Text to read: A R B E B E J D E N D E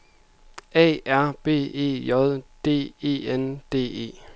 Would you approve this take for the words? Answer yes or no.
no